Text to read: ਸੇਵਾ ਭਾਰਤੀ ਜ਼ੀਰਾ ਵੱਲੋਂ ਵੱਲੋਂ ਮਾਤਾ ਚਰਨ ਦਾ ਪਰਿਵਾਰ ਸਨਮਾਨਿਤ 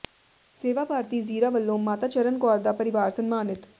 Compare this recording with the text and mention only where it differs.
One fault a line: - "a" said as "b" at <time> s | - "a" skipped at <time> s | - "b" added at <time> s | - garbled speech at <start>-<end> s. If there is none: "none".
- "ਵੱਲੋਂ" skipped at 1.8 s
- "ਕੌਰ" added at 2.4 s